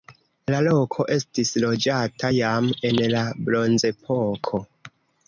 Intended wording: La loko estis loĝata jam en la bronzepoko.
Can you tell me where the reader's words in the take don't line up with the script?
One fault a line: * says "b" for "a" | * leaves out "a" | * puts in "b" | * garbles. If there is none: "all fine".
all fine